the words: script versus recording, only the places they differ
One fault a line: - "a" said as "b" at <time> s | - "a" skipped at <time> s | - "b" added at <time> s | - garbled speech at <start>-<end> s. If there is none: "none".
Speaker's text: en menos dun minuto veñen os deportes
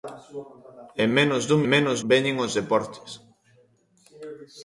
- "minuto" said as "menos" at 1.7 s